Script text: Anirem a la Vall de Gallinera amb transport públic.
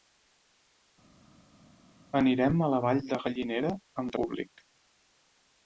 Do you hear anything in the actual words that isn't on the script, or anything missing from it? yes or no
yes